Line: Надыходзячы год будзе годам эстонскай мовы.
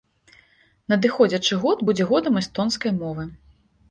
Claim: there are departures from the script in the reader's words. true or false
false